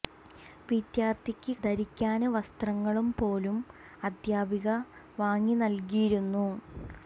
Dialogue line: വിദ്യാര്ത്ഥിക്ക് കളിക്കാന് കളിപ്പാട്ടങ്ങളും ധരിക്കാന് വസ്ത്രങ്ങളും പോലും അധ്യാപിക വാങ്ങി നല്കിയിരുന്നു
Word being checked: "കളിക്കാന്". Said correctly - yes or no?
no